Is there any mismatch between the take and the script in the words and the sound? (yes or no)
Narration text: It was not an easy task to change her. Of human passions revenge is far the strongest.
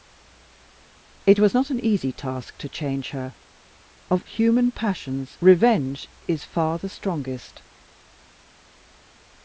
no